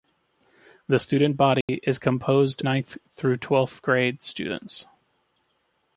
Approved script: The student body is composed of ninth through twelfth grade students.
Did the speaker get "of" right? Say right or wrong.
wrong